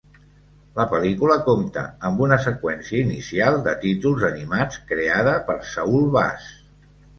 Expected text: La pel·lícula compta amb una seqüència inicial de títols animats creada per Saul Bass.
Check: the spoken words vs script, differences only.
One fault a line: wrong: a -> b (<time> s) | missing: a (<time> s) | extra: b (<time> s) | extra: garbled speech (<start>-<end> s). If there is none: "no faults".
no faults